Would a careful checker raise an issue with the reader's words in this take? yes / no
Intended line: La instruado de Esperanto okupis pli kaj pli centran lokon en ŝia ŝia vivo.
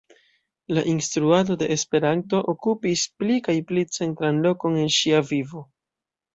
yes